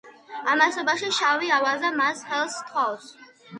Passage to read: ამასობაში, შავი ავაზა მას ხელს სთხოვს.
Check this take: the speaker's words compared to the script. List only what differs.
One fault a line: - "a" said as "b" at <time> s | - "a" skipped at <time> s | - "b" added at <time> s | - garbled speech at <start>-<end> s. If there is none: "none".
none